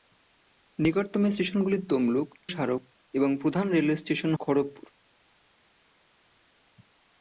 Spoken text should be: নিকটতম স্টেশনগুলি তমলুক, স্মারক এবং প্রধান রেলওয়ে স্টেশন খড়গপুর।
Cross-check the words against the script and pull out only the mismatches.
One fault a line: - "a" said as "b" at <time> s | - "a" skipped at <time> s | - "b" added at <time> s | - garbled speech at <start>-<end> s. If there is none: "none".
none